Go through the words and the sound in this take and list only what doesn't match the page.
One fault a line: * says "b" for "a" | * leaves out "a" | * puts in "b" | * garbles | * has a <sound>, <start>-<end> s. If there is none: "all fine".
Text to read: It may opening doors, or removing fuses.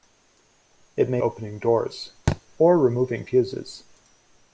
* has a thud, 2.3-2.4 s